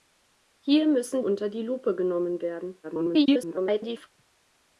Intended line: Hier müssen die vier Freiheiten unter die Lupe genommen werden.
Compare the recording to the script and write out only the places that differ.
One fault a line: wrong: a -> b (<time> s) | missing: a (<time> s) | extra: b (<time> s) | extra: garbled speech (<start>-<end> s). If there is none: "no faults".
missing: die vier Freiheiten (1.2 s)
extra: garbled speech (2.8-4.1 s)